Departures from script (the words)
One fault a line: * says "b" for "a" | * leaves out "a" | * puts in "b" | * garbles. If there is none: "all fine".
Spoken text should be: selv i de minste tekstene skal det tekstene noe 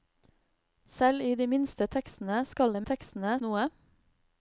all fine